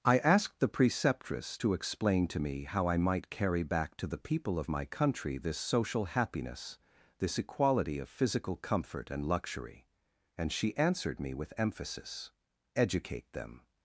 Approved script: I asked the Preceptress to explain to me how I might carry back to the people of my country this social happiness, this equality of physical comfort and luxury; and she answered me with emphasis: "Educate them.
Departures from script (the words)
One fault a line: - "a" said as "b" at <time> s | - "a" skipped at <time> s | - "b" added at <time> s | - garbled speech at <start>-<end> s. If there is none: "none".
none